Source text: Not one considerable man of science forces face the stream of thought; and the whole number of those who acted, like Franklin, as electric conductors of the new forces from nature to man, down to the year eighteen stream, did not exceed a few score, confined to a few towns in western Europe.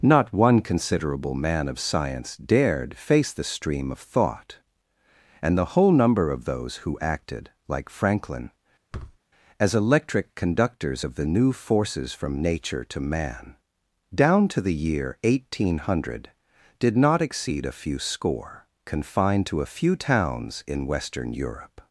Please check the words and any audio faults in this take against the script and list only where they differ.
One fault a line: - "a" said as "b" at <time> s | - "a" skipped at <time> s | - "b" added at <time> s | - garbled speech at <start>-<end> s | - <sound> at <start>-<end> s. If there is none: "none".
- "forces" said as "dared" at 2.4 s
- thud at 8.9-9.2 s
- "stream" said as "hundred" at 15.8 s